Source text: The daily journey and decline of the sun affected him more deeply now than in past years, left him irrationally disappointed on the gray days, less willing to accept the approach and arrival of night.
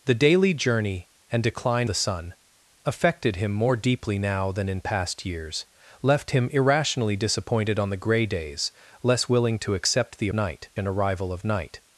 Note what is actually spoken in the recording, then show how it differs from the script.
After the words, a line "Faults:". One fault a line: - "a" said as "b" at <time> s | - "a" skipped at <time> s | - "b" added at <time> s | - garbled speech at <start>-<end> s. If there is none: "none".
The daily journey and decline the sun affected him more deeply now than in past years, left him irrationally disappointed on the gray days, less willing to accept the night and arrival of night.
Faults:
- "of" skipped at 1.9 s
- "approach" said as "night" at 10.3 s